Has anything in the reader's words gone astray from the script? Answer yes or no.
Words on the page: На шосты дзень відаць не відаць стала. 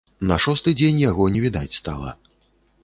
yes